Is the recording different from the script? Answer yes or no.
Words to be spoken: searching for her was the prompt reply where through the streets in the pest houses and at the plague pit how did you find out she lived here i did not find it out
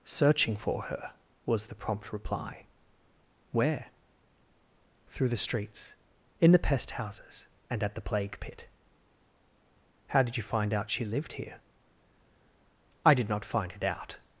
no